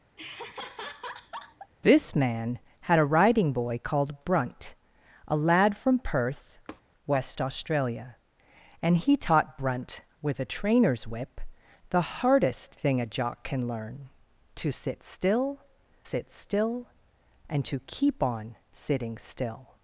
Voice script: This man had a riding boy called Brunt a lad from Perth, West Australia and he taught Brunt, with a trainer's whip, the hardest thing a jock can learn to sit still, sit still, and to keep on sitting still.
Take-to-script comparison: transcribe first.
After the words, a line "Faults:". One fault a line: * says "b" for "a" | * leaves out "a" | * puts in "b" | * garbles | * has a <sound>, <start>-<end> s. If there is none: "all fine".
This man had a riding boy called Brunt a lad from Perth, West Australia and he taught Brunt, with a trainer's whip, the hardest thing a jock can learn to sit still, sit still, and to keep on sitting still.
Faults:
* has a laugh, 0.2-1.7 s
* has a tap, 6.7-6.8 s